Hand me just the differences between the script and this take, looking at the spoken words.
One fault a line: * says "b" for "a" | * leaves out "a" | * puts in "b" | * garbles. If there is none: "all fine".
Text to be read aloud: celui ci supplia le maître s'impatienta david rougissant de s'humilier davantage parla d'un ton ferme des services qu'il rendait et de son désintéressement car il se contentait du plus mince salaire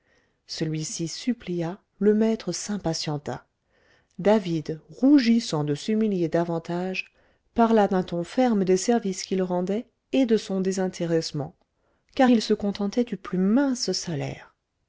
all fine